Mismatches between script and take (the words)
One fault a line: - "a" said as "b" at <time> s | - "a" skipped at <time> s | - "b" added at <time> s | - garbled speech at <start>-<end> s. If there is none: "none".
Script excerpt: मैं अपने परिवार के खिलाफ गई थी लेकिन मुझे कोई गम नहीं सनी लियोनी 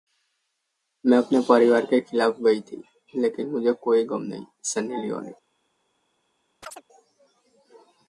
none